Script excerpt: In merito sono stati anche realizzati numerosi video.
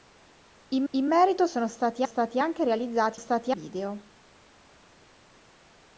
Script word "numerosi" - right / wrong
wrong